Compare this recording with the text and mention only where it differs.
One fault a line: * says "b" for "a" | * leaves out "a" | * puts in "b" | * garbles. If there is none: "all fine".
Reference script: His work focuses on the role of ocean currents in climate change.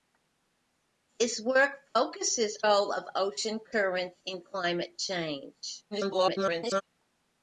* leaves out "on the"
* garbles